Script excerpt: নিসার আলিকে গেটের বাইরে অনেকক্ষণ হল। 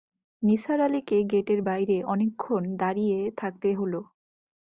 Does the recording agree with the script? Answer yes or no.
no